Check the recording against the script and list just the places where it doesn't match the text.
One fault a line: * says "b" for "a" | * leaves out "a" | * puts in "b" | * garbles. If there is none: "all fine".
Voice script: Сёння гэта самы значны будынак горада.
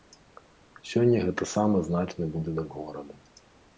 all fine